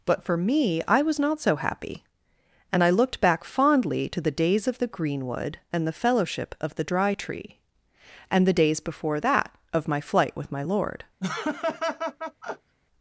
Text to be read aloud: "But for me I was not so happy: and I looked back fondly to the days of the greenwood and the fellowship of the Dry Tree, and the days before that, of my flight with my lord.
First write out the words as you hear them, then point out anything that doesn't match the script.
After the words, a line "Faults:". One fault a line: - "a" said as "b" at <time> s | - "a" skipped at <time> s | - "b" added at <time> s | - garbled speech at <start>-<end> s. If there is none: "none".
"But for me I was not so happy: and I looked back fondly to the days of the greenwood and the fellowship of the Dry Tree, and the days before that, of my flight with my lord.
Faults:
none